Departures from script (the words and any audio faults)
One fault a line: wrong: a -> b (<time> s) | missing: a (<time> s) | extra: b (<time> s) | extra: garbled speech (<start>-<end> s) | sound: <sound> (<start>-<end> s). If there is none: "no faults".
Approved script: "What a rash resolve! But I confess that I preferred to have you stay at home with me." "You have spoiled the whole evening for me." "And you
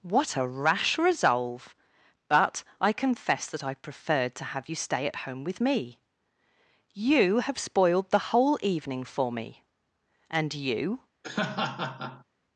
sound: laugh (11.2-12.2 s)